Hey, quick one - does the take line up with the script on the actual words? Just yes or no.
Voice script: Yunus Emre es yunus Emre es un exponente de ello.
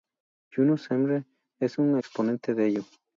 no